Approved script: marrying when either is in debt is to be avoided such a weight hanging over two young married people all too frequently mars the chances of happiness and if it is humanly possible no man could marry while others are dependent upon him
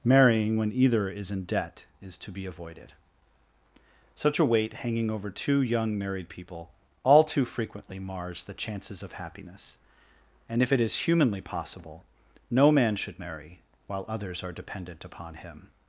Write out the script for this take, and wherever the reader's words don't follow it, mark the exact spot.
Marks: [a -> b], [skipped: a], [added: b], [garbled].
marrying when either is in debt is to be avoided such a weight hanging over two young married people all too frequently mars the chances of happiness and if it is humanly possible no man [could -> should] marry while others are dependent upon him